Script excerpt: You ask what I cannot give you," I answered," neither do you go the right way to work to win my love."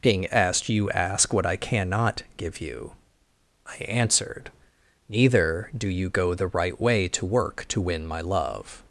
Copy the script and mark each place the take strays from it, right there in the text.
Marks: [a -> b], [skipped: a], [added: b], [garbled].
[added: being asked] You ask what I cannot give you," I answered," neither do you go the right way to work to win my love."